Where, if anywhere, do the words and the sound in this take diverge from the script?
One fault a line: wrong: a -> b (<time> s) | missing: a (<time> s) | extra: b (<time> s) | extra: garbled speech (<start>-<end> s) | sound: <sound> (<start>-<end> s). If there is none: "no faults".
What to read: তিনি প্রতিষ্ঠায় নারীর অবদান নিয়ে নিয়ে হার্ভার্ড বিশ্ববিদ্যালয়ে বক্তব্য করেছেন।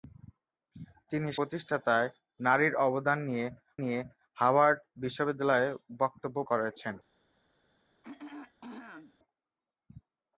sound: throat clearing (8.0-9.2 s)